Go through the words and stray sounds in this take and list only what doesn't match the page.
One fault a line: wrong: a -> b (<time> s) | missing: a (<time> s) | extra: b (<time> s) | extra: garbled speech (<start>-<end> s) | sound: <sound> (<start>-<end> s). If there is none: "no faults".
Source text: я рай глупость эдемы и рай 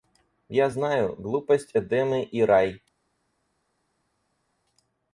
wrong: рай -> знаю (0.7 s)